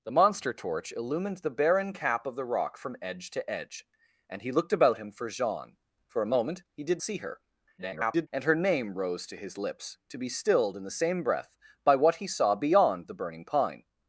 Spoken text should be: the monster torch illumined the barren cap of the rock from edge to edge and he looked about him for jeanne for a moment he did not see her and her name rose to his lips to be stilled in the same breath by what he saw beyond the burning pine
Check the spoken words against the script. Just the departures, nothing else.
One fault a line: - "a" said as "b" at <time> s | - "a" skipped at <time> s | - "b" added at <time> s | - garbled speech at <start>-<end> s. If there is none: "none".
- "not" skipped at 7.0 s
- garbled speech at 7.8-8.3 s